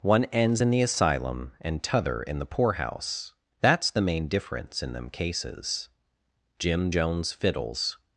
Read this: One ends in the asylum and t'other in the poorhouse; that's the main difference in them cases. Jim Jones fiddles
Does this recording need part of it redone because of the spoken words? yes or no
no